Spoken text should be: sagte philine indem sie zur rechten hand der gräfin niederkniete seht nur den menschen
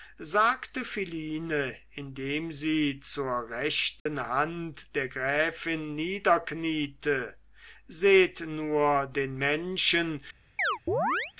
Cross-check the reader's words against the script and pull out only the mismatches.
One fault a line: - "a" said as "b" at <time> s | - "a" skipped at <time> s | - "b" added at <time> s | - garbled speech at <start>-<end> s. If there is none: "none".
none